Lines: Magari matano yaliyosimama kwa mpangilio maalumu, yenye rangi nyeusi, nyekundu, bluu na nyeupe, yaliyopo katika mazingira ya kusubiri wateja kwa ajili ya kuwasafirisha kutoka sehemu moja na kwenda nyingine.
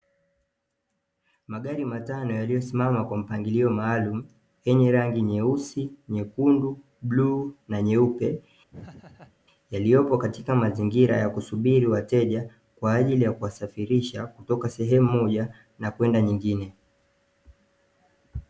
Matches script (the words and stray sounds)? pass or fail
fail